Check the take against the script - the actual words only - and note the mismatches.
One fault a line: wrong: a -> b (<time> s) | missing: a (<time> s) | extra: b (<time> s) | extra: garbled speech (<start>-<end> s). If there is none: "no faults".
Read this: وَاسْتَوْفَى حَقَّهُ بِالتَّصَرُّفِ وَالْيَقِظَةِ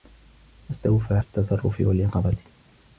missing: حَقَّهُ (1.2 s)